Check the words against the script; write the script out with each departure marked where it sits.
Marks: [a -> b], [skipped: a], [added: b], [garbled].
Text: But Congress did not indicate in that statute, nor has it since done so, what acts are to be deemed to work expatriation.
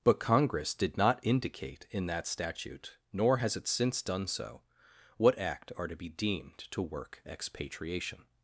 But Congress did not indicate in that statute, nor has it since done so, what [acts -> act] are to be deemed to work expatriation.